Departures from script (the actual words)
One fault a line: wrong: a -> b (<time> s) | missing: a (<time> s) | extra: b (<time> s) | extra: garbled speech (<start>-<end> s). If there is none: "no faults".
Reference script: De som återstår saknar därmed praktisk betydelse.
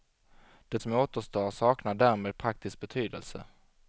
no faults